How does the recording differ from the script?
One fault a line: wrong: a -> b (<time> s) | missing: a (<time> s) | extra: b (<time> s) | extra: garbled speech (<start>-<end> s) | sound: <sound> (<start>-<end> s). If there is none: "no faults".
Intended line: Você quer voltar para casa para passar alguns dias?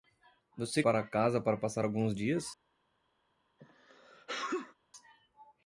missing: quer voltar (0.8 s)
sound: sneeze (3.6-4.8 s)